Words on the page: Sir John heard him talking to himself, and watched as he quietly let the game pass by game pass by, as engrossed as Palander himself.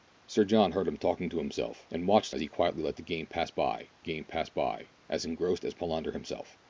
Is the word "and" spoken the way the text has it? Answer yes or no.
yes